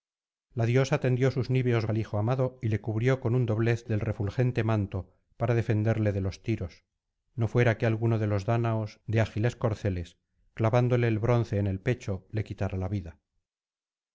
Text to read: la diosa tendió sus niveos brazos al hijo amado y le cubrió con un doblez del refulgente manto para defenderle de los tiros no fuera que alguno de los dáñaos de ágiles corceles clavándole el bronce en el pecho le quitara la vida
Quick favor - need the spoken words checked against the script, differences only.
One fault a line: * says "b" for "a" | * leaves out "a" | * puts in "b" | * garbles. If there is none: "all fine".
* leaves out "brazos"